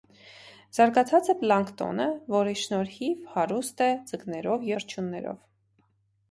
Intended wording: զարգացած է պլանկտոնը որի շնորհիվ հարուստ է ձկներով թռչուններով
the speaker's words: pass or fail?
pass